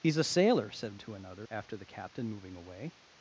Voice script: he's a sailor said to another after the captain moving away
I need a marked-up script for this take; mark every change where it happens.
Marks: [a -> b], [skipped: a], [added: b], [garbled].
he's a sailor said to another after the captain moving away